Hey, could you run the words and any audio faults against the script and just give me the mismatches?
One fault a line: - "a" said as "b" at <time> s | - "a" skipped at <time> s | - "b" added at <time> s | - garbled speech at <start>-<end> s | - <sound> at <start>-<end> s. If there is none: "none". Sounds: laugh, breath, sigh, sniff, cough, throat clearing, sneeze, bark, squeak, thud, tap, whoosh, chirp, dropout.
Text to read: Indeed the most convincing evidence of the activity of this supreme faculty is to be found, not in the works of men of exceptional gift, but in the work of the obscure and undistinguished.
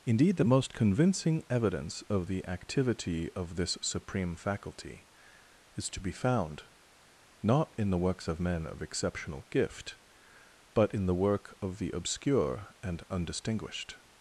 none